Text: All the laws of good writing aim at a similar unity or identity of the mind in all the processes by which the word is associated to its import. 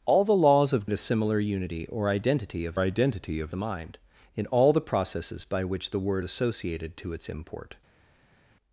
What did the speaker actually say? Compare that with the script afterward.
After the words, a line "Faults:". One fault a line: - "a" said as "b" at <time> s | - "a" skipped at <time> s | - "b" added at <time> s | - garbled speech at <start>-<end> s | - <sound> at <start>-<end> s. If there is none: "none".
All the laws of at a similar unity or identity of identity of the mind in all the processes by which the word associated to its import.
Faults:
- "good writing aim" skipped at 0.9 s
- "identity of" added at 2.8 s
- "is" skipped at 6.2 s